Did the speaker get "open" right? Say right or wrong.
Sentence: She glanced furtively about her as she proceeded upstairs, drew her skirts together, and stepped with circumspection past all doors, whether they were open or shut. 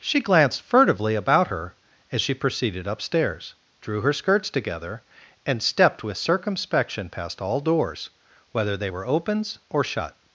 wrong